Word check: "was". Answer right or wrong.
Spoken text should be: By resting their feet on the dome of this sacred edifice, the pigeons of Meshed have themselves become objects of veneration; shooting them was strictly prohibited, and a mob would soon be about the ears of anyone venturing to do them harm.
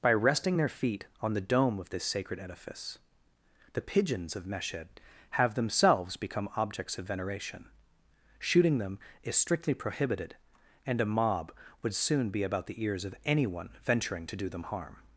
wrong